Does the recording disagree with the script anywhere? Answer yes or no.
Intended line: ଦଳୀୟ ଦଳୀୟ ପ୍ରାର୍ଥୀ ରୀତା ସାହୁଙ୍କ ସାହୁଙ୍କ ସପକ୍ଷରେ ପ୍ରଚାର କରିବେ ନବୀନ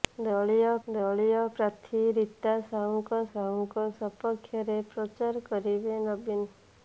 no